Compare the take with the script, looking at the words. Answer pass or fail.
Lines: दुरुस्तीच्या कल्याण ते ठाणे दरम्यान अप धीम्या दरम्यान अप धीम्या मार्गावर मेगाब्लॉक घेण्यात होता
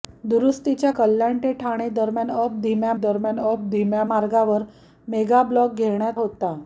pass